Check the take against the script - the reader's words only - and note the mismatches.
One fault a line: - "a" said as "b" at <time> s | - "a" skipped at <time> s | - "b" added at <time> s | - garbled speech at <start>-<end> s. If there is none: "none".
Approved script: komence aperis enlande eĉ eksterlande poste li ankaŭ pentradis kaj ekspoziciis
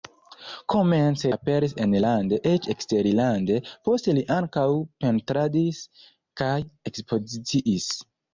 none